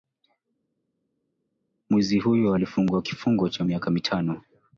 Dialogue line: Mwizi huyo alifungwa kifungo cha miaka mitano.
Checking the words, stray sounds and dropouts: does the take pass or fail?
pass